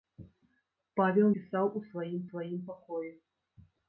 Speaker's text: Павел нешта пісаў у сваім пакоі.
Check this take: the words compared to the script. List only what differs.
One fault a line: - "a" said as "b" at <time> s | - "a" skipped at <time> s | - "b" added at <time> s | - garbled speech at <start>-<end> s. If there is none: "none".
- "нешта" skipped at 1.3 s
- "сваім" added at 2.3 s